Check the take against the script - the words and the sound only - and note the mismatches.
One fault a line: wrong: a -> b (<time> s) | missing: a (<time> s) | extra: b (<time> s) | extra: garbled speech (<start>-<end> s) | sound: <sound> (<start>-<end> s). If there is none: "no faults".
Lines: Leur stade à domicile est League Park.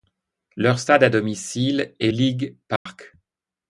sound: dropout (2.8-2.9 s)